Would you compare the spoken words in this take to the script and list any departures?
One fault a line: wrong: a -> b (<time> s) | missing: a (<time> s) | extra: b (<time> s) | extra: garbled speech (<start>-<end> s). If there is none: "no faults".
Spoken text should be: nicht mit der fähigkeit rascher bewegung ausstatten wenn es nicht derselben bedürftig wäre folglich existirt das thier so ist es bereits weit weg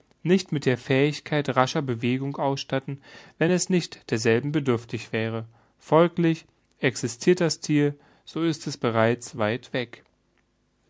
no faults